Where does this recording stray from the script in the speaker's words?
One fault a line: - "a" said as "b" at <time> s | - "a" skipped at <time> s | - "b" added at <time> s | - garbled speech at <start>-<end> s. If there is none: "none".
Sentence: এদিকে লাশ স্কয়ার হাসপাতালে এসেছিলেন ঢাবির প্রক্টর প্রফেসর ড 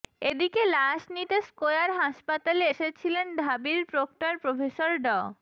- "নিতে" added at 1.1 s